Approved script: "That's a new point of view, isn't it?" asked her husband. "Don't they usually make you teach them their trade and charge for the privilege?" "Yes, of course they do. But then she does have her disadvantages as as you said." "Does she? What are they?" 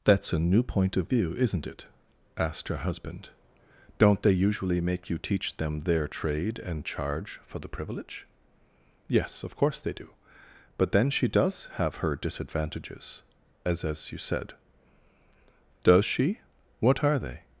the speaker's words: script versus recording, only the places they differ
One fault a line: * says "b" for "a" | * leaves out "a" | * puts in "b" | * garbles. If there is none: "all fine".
all fine